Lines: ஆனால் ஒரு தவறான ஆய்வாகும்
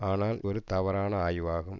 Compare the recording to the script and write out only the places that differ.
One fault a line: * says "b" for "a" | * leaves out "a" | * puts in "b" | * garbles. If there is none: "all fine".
all fine